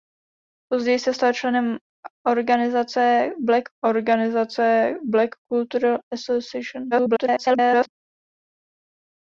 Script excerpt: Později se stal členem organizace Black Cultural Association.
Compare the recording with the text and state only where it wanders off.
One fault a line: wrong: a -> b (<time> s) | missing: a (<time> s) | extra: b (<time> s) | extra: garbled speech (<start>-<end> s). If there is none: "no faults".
extra: organizace Black (3.8 s)
extra: garbled speech (6.9-7.9 s)